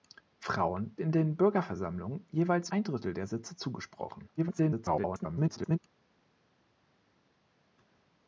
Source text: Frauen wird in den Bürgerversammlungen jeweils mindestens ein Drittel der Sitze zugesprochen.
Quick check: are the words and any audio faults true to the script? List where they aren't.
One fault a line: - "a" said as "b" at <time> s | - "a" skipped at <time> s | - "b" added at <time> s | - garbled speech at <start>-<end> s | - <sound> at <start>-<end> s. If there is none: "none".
- "wird" skipped at 1.0 s
- "mindestens" skipped at 2.7 s
- garbled speech at 4.4-5.8 s